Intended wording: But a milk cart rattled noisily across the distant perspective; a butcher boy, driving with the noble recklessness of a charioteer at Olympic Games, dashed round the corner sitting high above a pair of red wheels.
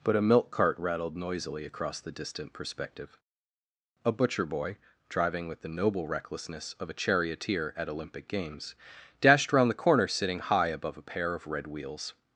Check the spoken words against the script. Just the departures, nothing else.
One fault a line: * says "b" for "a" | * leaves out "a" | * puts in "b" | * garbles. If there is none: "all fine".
all fine